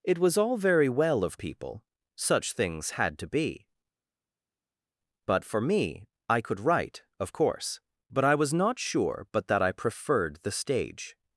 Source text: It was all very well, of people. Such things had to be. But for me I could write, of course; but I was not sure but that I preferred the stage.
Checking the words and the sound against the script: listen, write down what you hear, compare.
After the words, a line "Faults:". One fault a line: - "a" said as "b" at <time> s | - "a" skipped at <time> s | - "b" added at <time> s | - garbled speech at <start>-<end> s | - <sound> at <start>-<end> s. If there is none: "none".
It was all very well, of people. Such things had to be. But for me I could write, of course; but I was not sure but that I preferred the stage.
Faults:
none